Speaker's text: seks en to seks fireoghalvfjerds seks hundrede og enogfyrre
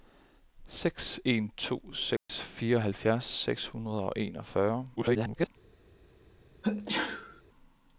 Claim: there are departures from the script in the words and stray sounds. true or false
true